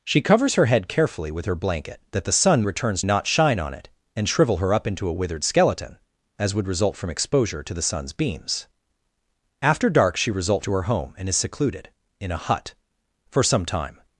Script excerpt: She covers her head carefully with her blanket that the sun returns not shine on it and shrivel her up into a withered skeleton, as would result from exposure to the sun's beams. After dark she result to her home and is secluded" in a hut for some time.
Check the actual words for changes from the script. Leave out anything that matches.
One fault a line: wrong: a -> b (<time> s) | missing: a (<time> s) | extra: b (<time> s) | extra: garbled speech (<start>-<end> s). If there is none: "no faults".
no faults